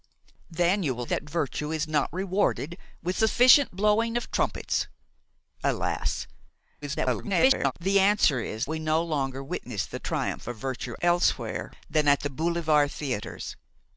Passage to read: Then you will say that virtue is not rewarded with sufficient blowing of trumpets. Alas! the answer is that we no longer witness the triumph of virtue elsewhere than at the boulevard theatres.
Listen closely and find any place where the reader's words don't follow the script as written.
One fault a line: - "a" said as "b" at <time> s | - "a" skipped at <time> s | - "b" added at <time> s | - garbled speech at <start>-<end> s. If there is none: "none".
- "say" skipped at 1.1 s
- garbled speech at 6.8-7.7 s
- "that" skipped at 8.7 s